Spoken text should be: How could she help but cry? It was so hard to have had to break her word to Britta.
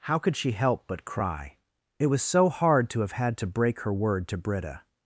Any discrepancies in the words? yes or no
no